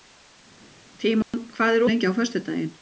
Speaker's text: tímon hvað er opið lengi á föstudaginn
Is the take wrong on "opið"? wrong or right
wrong